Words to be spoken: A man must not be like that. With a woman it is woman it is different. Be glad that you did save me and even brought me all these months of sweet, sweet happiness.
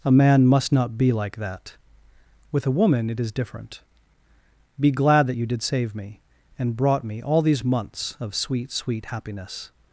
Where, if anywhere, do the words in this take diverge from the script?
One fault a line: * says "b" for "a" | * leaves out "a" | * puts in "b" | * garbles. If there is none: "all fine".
* leaves out "woman it is"
* leaves out "even"